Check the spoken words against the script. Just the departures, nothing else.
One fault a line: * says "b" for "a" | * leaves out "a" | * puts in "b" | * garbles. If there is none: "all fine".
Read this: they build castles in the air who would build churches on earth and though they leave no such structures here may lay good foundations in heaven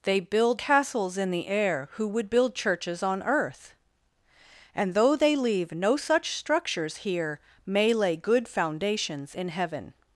all fine